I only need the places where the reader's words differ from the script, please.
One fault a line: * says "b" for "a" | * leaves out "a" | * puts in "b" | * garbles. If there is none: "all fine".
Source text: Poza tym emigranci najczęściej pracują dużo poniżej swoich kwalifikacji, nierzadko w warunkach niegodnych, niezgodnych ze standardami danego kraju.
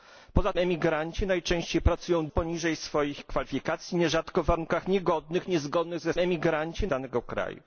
* leaves out "tym"
* leaves out "dużo"
* says "emigranci" for "standardami"